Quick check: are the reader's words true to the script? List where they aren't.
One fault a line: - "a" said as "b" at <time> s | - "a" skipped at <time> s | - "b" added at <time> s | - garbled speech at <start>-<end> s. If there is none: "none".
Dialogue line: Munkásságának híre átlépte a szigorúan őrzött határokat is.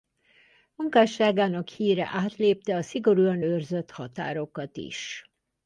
none